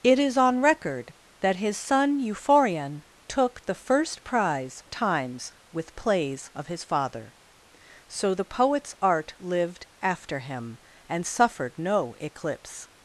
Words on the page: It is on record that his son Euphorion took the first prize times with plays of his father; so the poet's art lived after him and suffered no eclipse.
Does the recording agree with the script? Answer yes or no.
yes